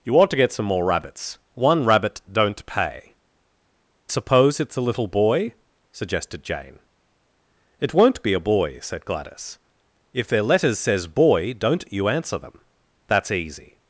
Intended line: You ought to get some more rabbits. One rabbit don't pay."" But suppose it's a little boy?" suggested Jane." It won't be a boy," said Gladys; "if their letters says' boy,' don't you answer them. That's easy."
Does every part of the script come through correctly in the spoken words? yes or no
no